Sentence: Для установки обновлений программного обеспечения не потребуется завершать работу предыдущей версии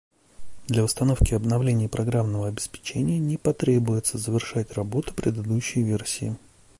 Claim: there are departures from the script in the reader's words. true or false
false